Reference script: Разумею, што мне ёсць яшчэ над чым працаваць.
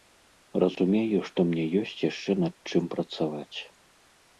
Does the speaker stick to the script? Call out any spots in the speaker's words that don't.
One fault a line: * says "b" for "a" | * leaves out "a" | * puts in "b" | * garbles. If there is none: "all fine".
all fine